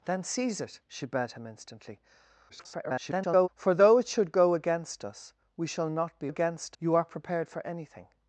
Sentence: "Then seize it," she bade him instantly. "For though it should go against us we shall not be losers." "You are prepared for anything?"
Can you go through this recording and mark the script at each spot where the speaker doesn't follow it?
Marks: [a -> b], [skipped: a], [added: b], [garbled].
"Then seize it," she bade him instantly. [garbled] "For though it should go against us we shall not be [losers." -> against] "You are prepared for anything?"